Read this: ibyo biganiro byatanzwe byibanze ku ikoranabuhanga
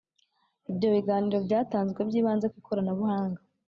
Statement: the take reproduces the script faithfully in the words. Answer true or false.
true